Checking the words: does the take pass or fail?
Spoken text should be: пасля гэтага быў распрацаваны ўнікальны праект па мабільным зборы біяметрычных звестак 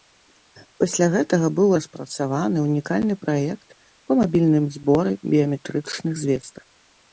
pass